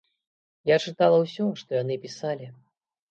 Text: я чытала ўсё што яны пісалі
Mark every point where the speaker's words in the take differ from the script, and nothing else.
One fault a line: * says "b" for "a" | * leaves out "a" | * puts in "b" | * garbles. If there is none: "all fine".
all fine